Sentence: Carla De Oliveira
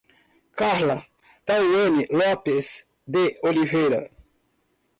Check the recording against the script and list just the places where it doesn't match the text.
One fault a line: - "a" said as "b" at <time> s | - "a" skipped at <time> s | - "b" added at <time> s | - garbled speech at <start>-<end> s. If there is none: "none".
- "Tawany Lopes" added at 1.5 s